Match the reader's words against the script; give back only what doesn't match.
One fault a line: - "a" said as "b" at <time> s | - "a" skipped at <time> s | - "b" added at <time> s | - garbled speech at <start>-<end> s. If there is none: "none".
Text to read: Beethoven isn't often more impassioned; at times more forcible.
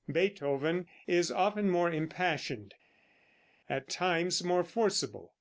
- "isn't" said as "is" at 1.1 s